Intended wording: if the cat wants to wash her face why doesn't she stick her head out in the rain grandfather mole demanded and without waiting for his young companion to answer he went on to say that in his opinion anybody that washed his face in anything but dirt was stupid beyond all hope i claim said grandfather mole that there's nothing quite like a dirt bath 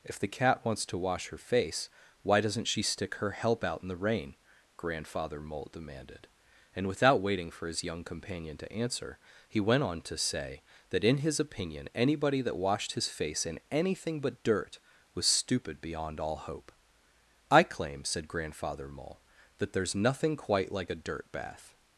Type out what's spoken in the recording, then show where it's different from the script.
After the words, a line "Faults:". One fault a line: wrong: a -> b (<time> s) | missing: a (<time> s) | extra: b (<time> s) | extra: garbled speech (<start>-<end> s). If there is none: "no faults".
if the cat wants to wash her face why doesn't she stick her help out in the rain grandfather mole demanded and without waiting for his young companion to answer he went on to say that in his opinion anybody that washed his face in anything but dirt was stupid beyond all hope i claim said grandfather mole that there's nothing quite like a dirt bath
Faults:
wrong: head -> help (3.3 s)